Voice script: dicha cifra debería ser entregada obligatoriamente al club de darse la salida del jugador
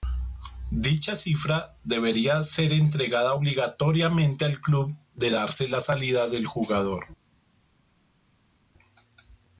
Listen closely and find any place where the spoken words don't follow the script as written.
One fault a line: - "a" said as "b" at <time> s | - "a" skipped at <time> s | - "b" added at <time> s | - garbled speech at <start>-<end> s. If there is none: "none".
none